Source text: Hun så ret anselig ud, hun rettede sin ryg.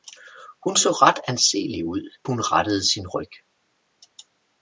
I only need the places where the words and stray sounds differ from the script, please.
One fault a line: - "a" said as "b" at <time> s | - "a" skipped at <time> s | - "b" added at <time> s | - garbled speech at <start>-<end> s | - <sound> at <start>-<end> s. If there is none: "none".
none